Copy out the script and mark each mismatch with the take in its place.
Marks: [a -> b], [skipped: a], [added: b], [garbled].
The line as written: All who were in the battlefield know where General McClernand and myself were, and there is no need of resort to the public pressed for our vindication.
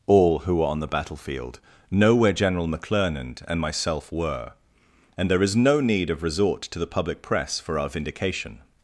All who were [in -> on] the battlefield know where General McClernand and myself were, and there is no need of resort to the public [pressed -> press] for our vindication.